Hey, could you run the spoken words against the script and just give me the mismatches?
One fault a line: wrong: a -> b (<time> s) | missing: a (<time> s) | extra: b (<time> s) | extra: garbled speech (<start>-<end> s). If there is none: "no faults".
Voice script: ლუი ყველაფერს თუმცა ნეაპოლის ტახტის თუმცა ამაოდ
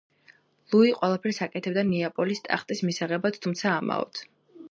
wrong: თუმცა -> აკეთებდა (1.5 s)
extra: მისაღებად (2.9 s)